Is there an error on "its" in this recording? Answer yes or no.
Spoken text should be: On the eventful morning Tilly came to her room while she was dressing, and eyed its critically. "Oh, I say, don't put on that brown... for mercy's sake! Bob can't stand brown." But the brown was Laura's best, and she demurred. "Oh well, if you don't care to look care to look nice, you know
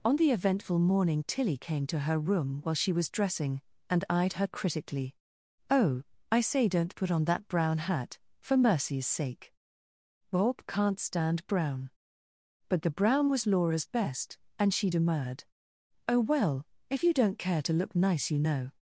yes